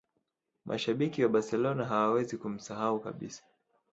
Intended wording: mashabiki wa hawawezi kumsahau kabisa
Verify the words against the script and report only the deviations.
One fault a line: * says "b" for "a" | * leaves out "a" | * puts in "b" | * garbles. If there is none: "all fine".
* puts in "barcelona"